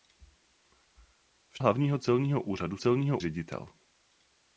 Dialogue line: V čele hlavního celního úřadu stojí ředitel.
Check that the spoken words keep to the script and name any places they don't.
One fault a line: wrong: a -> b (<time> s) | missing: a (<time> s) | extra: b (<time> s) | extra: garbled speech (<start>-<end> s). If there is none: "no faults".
missing: čele (1.6 s)
wrong: stojí -> celního (2.8 s)